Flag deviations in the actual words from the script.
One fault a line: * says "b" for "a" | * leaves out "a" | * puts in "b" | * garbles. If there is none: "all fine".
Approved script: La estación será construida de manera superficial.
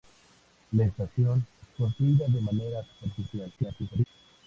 * leaves out "será"
* garbles